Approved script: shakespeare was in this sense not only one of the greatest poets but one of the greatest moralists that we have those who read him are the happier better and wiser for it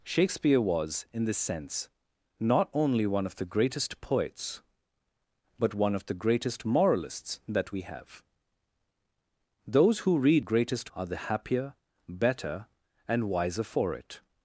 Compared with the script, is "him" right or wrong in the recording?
wrong